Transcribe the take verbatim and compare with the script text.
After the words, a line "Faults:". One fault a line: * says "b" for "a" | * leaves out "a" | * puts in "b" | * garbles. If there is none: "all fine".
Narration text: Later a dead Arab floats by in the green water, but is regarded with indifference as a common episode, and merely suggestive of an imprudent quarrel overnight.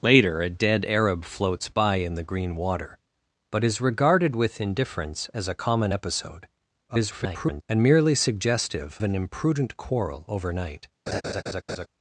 Later a dead Arab floats by in the green water, but is regarded with indifference as a common episode, [garbled] and merely suggestive an imprudent quarrel overnight.
Faults:
* garbles
* leaves out "of"